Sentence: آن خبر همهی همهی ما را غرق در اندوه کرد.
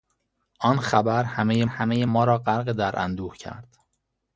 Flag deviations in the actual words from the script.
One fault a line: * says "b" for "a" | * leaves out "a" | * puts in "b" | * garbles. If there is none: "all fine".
all fine